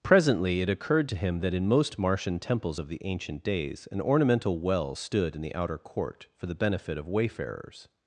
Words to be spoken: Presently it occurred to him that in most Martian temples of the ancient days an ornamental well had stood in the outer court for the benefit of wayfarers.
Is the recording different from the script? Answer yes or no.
yes